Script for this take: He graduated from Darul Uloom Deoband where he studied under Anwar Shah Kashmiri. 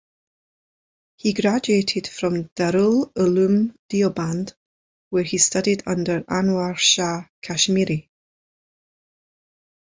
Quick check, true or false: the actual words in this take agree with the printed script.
true